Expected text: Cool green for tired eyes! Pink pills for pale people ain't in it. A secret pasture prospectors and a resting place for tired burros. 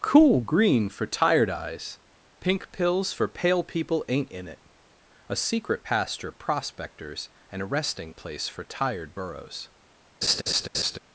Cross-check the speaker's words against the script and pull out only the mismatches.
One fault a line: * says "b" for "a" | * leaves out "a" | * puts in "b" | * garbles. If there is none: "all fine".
all fine